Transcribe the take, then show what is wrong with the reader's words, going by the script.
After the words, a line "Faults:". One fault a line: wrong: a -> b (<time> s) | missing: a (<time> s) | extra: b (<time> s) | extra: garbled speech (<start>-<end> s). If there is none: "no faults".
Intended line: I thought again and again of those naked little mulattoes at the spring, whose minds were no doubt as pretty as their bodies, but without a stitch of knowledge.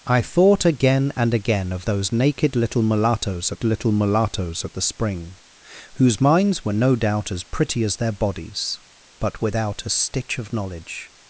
I thought again and again of those naked little mulattoes at little mulattoes at the spring, whose minds were no doubt as pretty as their bodies, but without a stitch of knowledge.
Faults:
extra: little mulattoes at (3.6 s)